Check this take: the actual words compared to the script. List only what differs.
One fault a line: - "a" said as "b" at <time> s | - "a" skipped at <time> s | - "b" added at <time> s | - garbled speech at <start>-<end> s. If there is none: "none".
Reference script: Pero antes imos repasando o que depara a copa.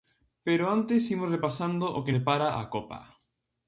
none